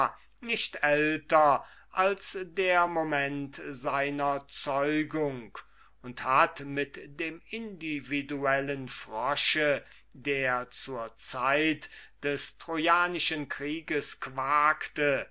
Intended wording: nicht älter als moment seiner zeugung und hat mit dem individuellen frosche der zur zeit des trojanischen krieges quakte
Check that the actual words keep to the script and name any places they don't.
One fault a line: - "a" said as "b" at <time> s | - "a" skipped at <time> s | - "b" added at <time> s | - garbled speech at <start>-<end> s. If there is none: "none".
- "der" added at 2.4 s